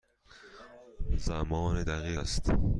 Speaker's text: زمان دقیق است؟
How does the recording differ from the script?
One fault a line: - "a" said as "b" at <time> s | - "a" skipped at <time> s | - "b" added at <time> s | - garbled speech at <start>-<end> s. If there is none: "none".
none